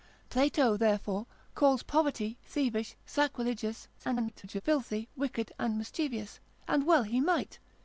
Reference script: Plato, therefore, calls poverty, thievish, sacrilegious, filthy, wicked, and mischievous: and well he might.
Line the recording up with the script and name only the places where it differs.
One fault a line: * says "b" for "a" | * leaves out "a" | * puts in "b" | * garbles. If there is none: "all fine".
* garbles